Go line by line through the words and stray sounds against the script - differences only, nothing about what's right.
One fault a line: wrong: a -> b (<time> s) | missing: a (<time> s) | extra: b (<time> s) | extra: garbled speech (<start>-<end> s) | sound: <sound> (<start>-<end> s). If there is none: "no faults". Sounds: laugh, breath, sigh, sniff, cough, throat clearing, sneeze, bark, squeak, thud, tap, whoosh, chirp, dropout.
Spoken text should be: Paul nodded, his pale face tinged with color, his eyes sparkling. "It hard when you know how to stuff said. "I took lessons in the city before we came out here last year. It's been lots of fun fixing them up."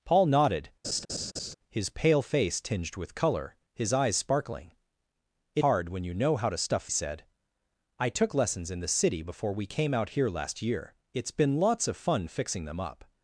sound: laugh (0.8-1.5 s)